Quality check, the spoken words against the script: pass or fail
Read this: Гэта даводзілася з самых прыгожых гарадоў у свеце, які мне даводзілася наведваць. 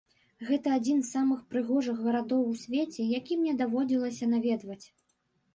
fail